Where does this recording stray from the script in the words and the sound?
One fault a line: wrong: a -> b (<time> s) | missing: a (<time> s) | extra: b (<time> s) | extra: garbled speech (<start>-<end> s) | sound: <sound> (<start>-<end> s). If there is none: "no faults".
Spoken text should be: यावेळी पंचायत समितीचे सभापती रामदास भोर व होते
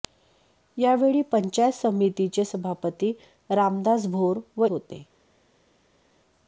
no faults